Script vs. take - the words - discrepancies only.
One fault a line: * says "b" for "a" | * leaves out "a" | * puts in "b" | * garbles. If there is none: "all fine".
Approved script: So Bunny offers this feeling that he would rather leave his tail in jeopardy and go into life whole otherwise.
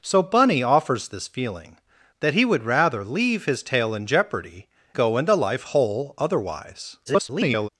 * leaves out "and"
* garbles